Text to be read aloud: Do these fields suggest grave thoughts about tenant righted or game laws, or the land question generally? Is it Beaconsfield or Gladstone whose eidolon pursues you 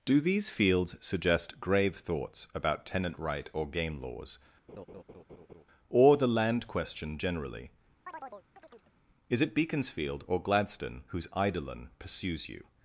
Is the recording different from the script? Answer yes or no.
yes